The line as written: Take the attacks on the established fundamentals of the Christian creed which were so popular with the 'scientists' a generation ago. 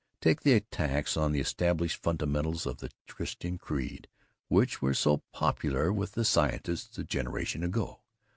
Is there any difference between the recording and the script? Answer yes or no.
no